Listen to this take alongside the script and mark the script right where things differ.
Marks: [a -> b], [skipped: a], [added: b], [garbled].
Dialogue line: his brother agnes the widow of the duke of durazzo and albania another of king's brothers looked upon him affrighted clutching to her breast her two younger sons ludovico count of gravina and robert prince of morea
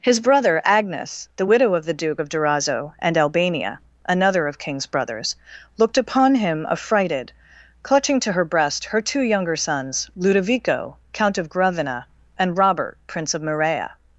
his brother agnes the widow of the duke of durazzo and albania another of king's brothers looked upon him affrighted clutching to her breast her two younger sons ludovico count of gravina and robert prince of morea